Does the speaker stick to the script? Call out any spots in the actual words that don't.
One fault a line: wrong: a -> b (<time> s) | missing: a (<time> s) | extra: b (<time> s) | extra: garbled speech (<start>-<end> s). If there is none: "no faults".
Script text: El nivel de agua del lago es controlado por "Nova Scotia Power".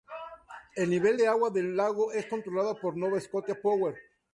no faults